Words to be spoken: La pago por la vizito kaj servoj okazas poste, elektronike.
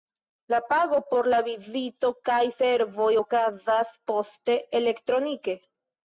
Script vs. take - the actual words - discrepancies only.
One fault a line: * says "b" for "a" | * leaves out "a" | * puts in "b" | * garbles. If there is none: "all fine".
all fine